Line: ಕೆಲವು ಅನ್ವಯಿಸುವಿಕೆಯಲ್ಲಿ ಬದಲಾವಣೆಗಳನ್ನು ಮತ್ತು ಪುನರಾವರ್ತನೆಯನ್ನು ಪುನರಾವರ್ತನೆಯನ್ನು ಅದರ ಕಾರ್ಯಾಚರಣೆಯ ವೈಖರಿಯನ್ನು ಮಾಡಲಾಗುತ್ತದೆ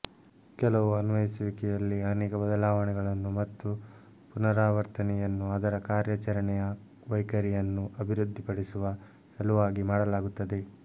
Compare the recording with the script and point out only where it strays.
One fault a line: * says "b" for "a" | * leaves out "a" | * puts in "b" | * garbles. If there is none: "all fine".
* puts in "ಅನೇಕ"
* leaves out "ಪುನರಾವರ್ತನೆಯನ್ನು"
* puts in "ಅಭಿವೃದ್ಧಿಪಡಿಸುವ ಸಲುವಾಗಿ"